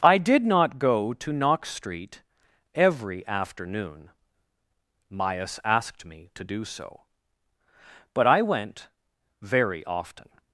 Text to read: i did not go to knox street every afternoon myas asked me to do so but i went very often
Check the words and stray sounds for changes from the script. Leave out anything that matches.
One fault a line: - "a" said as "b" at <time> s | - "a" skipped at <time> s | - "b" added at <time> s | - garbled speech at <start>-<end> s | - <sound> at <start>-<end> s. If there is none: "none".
none